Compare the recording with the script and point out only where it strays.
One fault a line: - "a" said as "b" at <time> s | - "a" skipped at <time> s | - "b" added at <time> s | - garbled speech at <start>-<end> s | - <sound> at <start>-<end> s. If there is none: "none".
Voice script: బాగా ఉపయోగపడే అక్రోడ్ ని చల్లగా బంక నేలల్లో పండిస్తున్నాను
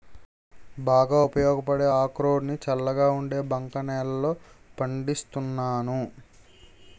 - "ఉండే" added at 3.1 s